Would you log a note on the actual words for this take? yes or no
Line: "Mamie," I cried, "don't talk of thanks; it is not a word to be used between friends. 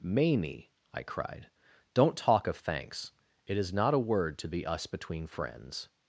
yes